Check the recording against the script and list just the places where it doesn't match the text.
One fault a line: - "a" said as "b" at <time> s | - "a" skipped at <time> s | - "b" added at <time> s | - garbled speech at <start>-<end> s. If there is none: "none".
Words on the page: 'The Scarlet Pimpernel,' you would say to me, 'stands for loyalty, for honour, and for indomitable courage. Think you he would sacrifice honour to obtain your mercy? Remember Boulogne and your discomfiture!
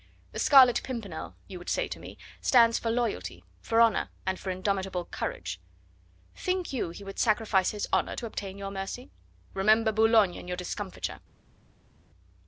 - "his" added at 7.7 s